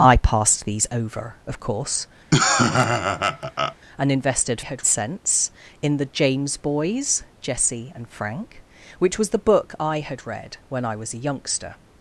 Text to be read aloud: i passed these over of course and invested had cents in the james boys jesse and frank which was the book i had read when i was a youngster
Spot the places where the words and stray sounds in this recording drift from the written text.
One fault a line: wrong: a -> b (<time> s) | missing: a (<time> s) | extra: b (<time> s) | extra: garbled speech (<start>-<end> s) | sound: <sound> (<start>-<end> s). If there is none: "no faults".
sound: laugh (2.3-3.8 s)